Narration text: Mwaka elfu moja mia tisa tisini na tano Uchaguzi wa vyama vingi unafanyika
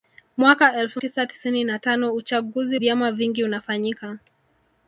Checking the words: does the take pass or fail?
fail